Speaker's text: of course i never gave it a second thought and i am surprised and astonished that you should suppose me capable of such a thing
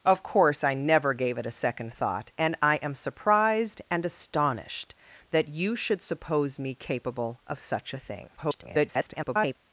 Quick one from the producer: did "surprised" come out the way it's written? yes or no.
yes